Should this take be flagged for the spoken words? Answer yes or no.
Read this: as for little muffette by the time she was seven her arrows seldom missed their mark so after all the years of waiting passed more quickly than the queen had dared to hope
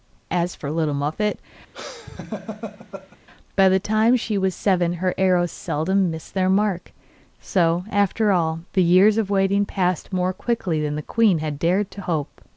no